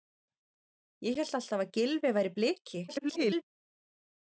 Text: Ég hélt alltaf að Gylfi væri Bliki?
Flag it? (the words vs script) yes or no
yes